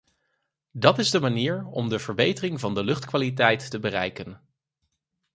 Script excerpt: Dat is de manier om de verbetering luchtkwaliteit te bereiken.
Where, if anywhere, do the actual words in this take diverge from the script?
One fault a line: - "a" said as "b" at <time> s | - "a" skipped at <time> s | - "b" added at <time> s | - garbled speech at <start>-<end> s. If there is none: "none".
- "van de" added at 2.6 s